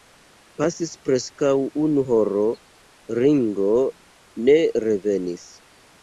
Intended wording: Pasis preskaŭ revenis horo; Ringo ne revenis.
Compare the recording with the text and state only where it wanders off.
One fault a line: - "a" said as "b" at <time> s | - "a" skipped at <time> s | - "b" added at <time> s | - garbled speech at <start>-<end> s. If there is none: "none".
- "revenis" said as "unu" at 1.8 s